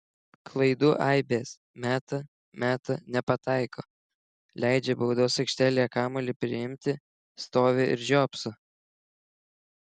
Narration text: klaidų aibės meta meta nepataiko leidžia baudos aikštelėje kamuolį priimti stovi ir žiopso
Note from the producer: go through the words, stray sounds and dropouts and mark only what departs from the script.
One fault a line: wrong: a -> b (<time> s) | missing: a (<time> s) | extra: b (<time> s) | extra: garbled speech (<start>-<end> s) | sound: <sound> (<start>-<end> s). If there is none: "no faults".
no faults